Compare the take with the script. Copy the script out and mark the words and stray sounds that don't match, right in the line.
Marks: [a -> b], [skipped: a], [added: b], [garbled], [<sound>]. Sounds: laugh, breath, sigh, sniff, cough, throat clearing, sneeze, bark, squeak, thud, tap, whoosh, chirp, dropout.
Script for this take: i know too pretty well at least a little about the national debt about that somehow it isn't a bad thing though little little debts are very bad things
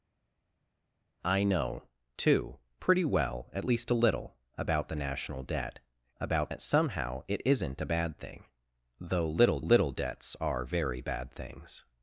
i know too pretty well at least a little about the national debt about that somehow it isn't a bad thing though little little debts are very bad things